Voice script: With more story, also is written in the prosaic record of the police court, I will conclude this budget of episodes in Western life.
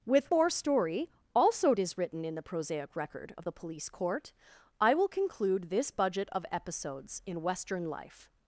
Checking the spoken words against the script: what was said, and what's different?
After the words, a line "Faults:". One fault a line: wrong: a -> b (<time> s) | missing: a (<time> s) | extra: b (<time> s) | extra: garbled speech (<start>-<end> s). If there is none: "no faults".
With more story, also is written in the prosaic record of the police court, I will conclude this budget of episodes in Western life.
Faults:
no faults